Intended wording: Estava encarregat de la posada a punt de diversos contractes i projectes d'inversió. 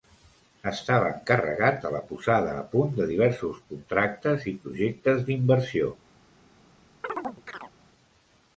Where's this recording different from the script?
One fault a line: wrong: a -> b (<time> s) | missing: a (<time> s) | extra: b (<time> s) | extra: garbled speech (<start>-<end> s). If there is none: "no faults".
no faults